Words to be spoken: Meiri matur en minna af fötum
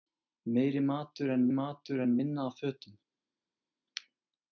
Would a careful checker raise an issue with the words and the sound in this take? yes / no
yes